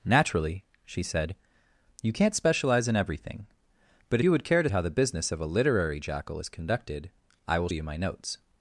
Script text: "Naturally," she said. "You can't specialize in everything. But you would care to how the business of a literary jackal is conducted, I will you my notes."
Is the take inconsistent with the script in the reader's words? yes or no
no